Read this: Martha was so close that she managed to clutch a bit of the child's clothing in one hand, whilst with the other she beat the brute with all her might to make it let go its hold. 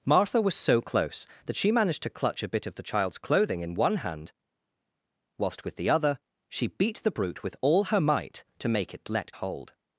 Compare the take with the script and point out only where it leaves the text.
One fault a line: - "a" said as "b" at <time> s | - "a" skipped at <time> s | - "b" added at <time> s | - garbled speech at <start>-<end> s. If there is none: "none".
- "go its" skipped at 9.3 s